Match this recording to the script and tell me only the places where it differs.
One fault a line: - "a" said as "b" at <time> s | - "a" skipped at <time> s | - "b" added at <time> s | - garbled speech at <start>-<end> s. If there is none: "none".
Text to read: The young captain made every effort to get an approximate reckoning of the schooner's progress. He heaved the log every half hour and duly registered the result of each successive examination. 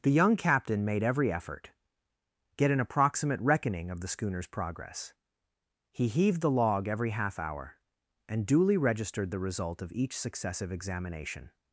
- "to" skipped at 1.7 s